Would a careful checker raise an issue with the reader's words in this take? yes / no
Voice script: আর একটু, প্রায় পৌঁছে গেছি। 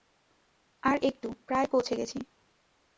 no